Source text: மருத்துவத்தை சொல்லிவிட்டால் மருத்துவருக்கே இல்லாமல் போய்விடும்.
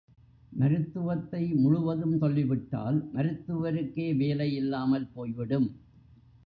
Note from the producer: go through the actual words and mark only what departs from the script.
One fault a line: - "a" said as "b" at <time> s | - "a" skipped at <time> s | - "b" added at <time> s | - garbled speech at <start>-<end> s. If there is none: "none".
- "முழுவதும்" added at 1.5 s
- "வேலை" added at 4.2 s